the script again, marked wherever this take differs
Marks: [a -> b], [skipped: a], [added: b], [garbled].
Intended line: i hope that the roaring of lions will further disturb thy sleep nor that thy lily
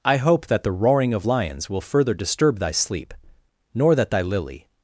i hope that the roaring of lions will further disturb thy sleep nor that thy lily